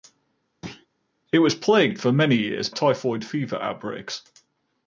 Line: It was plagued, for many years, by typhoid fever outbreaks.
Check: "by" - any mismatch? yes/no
yes